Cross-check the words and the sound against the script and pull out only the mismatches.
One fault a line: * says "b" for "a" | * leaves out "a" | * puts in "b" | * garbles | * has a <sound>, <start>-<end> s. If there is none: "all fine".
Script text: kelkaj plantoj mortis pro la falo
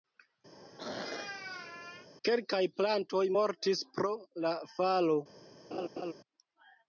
* has a throat clearing, 0.5-2.1 s
* has a laugh, 5.7-6.1 s